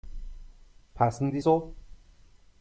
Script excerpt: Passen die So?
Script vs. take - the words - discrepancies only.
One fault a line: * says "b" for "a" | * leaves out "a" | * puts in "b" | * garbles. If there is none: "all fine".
all fine